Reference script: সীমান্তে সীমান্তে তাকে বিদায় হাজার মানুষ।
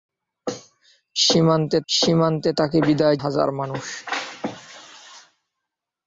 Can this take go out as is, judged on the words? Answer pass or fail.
pass